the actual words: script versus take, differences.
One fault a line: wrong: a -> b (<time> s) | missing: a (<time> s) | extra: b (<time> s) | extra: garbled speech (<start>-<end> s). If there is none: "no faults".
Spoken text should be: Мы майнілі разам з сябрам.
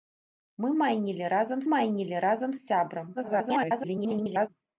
extra: майнілі разам (1.7 s)
extra: garbled speech (3.1-4.5 s)